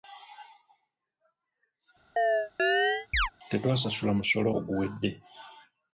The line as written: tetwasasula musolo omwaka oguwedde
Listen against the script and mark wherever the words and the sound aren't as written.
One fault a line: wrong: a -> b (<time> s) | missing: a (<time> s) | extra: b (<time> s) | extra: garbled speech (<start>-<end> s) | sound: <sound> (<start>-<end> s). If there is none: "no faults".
sound: chirp (2.2-3.3 s)
missing: omwaka (4.5 s)